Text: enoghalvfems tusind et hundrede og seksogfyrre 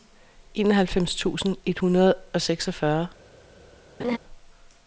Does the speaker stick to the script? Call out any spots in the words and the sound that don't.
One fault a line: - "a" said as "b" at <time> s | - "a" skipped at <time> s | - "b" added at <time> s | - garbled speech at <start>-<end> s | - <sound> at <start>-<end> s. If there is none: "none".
- laugh at 4.0-4.2 s